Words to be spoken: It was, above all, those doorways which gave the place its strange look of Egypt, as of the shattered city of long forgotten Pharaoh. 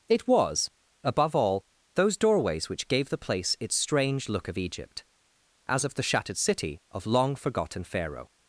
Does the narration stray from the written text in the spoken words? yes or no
no